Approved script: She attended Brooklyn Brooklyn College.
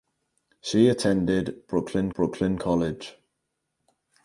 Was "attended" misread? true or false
false